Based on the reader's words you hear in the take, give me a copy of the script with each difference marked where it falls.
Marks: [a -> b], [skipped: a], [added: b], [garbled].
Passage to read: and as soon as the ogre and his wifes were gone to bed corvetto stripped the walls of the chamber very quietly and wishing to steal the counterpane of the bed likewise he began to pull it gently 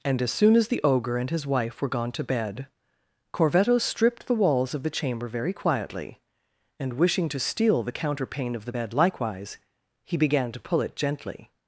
and as soon as the ogre and his [wifes -> wife] were gone to bed corvetto stripped the walls of the chamber very quietly and wishing to steal the counterpane of the bed likewise he began to pull it gently